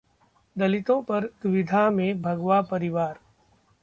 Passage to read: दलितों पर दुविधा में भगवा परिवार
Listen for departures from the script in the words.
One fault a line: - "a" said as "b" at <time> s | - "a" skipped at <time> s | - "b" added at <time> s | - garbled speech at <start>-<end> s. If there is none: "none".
none